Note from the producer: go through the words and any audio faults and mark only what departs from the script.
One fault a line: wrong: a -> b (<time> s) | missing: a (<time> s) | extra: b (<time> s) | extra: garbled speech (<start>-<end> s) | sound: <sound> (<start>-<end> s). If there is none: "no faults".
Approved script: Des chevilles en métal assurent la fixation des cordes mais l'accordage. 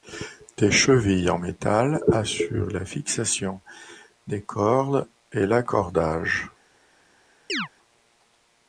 wrong: mais -> et (5.3 s)
sound: chirp (7.5-7.7 s)